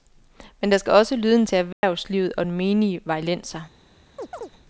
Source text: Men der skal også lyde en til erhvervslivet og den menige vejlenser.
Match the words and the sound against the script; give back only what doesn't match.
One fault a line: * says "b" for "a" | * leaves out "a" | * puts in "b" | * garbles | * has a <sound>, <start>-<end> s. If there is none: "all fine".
* has a dropout, 1.7-1.8 s
* has a chirp, 4.2-4.5 s